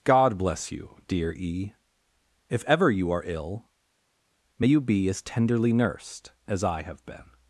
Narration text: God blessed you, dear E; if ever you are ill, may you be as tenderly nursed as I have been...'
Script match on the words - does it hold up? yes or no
no